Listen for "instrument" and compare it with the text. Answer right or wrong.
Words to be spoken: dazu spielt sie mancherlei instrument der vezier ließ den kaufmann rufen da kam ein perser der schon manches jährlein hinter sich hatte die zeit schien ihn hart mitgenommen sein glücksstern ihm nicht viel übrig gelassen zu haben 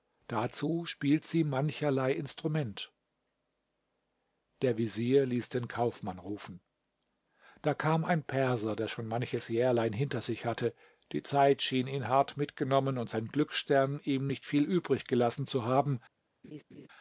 right